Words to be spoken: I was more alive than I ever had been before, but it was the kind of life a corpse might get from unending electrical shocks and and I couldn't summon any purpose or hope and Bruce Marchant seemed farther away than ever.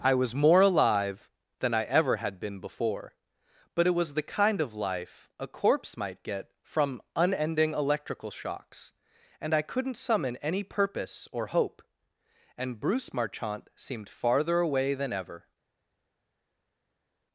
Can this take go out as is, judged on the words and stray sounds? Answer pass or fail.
fail